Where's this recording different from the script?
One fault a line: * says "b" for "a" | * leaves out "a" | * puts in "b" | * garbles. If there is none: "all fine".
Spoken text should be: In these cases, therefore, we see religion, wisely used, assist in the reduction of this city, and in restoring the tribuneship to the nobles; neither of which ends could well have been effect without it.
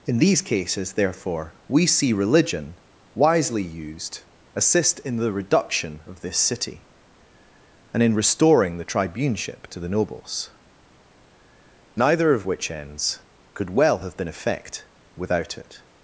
all fine